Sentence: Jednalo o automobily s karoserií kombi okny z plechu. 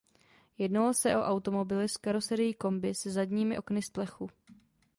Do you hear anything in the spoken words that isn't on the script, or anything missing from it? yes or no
yes